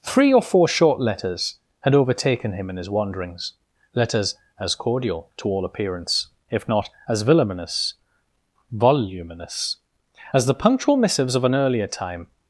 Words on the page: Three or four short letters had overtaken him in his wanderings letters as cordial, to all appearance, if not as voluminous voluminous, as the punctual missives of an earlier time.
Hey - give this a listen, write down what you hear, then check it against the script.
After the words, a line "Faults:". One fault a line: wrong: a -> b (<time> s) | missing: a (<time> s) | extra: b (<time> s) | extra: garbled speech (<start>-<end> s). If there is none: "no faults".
Three or four short letters had overtaken him in his wanderings letters as cordial, to all appearance, if not as voluminous voluminous, as the punctual missives of an earlier time.
Faults:
no faults